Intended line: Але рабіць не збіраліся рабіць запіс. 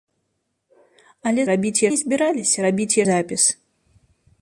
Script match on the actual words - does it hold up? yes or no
yes